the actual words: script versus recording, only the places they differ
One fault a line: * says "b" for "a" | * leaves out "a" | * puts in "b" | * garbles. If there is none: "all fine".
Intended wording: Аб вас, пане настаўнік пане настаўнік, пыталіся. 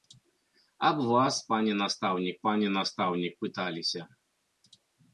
all fine